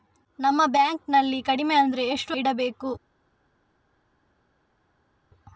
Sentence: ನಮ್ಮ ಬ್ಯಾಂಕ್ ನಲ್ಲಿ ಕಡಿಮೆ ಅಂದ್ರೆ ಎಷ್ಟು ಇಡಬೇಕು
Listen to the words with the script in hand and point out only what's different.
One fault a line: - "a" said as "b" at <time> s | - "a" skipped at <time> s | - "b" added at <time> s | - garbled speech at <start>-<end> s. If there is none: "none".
none